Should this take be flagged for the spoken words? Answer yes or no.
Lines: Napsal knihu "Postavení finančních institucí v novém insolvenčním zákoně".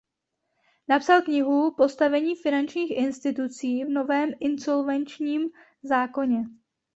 no